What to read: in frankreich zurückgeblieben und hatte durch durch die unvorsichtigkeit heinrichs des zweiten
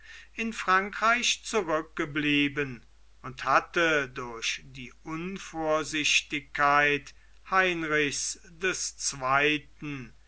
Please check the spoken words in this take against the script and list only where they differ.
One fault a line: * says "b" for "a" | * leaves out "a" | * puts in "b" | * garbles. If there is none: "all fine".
* leaves out "durch"